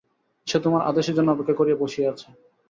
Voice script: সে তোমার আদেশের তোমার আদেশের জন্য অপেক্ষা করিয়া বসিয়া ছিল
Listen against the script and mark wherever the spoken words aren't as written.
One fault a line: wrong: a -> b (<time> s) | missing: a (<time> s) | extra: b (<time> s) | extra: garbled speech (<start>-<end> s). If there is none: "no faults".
missing: তোমার আদেশের (1.1 s)
wrong: ছিল -> আছে (2.1 s)